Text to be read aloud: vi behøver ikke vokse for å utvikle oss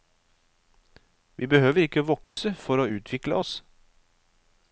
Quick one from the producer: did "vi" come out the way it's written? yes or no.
yes